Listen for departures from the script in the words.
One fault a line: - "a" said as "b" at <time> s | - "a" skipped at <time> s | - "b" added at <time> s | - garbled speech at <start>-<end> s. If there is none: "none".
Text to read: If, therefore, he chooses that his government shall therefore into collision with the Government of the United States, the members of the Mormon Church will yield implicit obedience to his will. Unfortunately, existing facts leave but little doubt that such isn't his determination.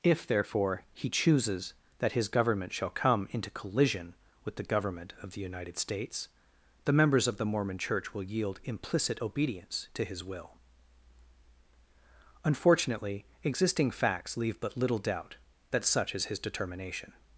- "therefore" said as "come" at 2.9 s
- "isn't" said as "is" at 16.1 s